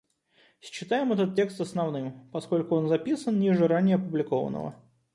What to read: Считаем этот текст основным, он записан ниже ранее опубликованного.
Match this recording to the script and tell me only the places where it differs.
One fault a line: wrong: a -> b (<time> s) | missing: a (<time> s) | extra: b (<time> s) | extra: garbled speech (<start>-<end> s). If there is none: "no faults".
extra: поскольку (2.3 s)